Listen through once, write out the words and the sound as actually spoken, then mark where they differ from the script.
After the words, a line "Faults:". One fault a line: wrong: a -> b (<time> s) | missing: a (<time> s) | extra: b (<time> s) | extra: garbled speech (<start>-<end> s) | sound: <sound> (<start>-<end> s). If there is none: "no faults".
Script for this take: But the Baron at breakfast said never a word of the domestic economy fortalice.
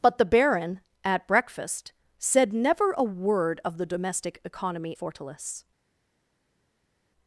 But the Baron at breakfast said never a word of the domestic economy fortalice.
Faults:
no faults